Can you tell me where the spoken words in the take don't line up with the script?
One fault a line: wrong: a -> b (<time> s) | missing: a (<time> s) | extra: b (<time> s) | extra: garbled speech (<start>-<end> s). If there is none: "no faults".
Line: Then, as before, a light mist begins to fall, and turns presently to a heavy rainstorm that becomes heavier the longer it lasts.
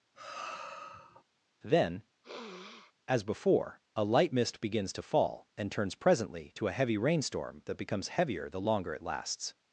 no faults